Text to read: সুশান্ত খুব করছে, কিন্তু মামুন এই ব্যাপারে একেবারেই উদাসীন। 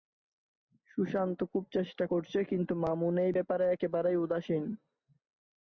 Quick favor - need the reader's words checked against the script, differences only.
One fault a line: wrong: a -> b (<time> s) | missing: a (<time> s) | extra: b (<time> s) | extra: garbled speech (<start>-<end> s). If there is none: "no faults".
extra: চেষ্টা (1.8 s)